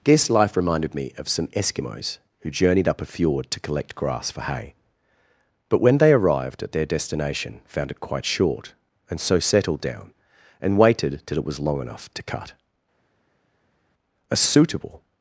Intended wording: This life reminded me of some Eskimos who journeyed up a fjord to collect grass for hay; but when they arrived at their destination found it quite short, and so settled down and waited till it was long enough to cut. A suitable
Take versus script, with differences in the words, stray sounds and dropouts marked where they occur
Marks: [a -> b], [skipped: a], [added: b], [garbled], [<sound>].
This life reminded me of some Eskimos who journeyed up a fjord to collect grass for hay; but when they arrived at their destination found it quite short, and so settled down and waited till it was long enough to cut. A suitable